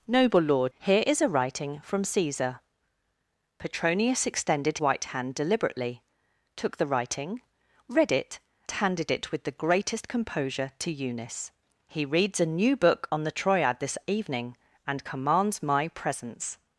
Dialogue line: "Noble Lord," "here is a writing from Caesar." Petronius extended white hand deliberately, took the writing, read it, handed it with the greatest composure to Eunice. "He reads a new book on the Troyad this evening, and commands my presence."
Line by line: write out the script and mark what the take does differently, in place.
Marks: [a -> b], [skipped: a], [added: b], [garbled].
"Noble Lord," "here is a writing from Caesar." Petronius extended white hand deliberately, took the writing, read it, handed it with the greatest composure to Eunice. "He reads a new book on the Troyad this evening, and commands my presence."